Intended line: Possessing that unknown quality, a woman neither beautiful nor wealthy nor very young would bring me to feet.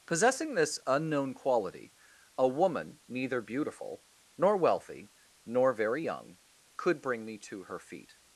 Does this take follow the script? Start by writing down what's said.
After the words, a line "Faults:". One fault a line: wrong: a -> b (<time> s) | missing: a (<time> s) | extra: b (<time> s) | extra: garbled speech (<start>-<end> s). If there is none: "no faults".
Possessing this unknown quality, a woman neither beautiful nor wealthy nor very young could bring me to her feet.
Faults:
wrong: that -> this (0.6 s)
wrong: would -> could (6.8 s)
extra: her (7.6 s)